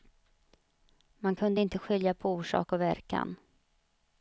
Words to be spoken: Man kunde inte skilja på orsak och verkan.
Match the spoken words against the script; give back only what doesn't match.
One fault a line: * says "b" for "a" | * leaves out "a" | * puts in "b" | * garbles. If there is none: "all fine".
all fine